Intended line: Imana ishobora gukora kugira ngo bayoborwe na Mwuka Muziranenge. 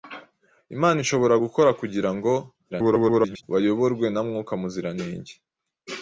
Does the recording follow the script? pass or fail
fail